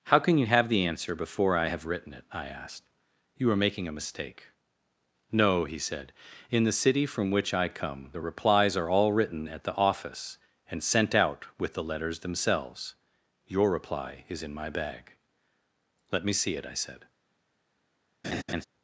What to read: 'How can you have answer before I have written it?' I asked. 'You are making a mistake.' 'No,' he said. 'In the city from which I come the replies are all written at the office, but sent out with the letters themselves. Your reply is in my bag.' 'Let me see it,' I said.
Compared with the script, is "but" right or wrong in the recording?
wrong